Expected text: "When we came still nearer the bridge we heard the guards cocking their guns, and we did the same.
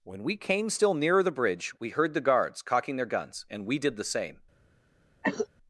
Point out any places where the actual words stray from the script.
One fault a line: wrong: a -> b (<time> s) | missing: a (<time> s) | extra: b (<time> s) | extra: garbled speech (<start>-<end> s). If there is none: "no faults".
no faults